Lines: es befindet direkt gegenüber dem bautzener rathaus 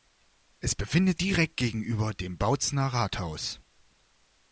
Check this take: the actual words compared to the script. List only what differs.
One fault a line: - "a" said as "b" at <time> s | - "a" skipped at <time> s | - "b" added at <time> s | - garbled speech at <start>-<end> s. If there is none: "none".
none